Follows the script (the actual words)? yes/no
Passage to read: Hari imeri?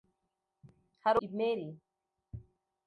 yes